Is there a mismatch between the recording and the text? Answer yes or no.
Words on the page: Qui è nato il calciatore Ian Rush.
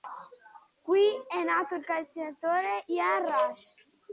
no